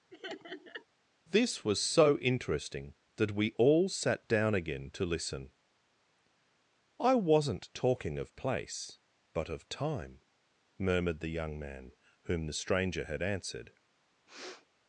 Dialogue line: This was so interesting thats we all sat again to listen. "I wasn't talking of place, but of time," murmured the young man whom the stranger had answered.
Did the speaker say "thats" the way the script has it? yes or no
no